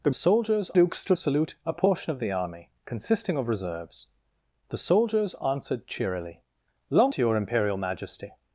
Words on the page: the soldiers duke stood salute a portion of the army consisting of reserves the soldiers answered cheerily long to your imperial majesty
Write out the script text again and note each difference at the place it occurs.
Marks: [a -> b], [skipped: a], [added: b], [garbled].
the soldiers duke stood salute a portion of the army consisting of reserves the soldiers answered cheerily long to your imperial majesty